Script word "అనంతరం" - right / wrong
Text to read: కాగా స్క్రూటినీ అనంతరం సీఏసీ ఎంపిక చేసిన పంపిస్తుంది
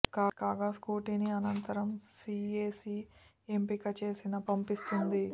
right